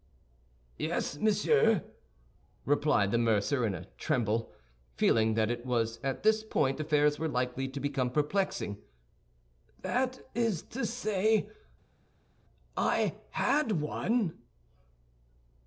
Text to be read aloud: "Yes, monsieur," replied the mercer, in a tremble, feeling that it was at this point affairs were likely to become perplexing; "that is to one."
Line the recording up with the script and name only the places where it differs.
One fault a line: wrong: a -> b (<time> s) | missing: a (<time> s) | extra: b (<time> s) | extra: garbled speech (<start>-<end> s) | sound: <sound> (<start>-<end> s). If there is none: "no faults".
extra: say I had (10.9 s)